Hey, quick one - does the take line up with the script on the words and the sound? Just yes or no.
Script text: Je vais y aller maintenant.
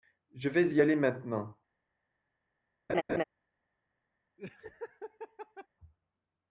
no